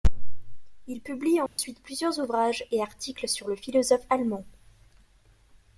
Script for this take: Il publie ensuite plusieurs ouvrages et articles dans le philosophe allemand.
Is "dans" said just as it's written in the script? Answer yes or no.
no